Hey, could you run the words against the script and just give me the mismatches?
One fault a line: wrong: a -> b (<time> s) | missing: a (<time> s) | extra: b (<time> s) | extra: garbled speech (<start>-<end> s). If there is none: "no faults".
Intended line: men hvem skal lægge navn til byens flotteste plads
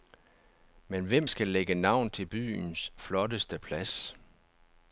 no faults